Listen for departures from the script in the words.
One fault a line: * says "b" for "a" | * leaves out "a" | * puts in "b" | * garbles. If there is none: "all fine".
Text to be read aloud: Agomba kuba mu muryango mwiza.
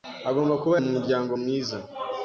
all fine